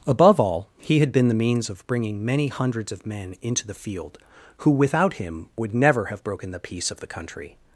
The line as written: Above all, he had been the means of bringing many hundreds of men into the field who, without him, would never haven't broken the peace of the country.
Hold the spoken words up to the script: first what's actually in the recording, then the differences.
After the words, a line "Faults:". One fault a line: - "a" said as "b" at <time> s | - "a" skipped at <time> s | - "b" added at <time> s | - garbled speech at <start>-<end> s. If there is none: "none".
Above all, he had been the means of bringing many hundreds of men into the field who, without him, would never have broken the peace of the country.
Faults:
- "haven't" said as "have" at 6.0 s